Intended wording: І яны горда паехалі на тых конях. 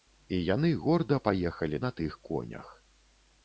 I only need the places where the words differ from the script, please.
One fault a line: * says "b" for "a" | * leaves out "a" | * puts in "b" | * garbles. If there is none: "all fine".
all fine